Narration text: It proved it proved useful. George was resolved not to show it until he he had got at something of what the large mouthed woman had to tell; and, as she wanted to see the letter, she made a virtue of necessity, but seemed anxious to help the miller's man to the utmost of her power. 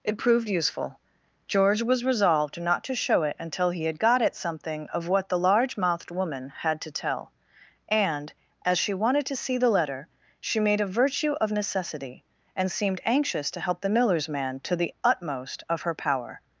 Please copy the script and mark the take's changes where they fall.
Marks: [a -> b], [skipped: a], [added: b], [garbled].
It proved [skipped: it proved] useful. George was resolved not to show it until he [skipped: he] had got at something of what the large mouthed woman had to tell; and, as she wanted to see the letter, she made a virtue of necessity, [but -> and] seemed anxious to help the miller's man to the utmost of her power.